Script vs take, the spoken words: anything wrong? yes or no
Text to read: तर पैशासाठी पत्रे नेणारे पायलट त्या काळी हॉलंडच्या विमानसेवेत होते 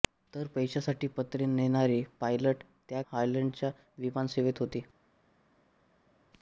yes